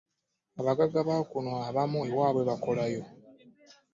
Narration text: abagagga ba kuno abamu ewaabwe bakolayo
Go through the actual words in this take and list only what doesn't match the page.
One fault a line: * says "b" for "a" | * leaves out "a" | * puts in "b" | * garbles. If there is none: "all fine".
all fine